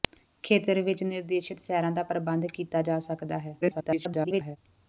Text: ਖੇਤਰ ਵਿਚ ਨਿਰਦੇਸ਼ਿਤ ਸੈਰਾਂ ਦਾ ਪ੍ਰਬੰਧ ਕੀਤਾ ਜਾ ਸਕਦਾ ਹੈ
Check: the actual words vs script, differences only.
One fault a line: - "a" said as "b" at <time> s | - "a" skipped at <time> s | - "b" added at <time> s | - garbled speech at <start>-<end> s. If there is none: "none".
- garbled speech at 3.6-4.6 s